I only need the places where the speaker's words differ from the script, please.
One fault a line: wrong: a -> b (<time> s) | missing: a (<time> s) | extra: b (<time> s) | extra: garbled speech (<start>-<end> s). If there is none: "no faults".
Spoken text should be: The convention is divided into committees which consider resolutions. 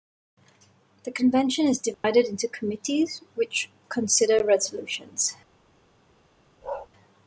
no faults